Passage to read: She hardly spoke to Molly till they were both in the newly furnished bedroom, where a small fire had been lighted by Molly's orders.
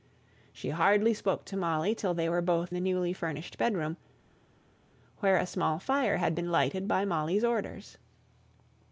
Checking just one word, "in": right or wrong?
wrong